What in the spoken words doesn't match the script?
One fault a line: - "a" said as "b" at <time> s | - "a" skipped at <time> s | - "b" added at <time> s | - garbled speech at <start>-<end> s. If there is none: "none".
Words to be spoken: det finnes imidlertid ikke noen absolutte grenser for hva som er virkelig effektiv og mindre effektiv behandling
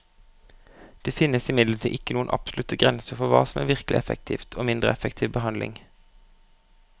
none